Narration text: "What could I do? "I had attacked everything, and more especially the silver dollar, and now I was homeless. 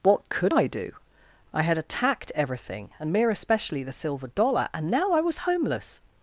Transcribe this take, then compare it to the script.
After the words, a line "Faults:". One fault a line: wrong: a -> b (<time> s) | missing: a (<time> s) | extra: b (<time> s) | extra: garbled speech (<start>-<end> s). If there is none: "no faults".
"What could I do? "I had attacked everything, and mere especially the silver dollar, and now I was homeless.
Faults:
wrong: more -> mere (3.1 s)